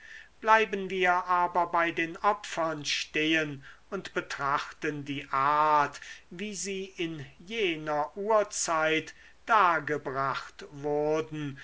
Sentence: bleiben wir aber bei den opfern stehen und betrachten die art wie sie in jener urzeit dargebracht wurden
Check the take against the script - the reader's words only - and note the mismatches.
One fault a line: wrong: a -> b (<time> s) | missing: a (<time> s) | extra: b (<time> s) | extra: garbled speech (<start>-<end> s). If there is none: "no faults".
no faults